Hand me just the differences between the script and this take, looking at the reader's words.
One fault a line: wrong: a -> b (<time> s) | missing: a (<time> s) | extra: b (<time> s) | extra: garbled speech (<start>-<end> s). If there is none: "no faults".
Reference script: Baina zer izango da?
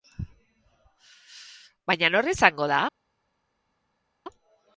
wrong: zer -> nor (2.1 s)